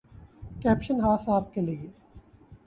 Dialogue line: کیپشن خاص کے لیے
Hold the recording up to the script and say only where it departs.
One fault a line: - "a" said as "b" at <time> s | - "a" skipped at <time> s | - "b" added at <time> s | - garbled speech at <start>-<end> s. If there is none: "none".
- "آپ" added at 1.3 s